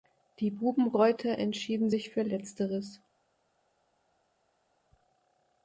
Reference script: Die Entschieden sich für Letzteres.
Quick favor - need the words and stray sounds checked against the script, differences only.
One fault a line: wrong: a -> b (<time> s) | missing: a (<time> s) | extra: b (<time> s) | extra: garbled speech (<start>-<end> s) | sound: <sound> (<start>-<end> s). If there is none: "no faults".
extra: Bubenreuther (0.5 s)